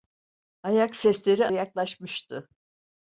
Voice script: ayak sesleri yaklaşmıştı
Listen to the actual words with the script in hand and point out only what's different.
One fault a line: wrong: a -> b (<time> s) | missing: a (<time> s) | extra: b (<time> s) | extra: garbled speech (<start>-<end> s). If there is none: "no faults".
no faults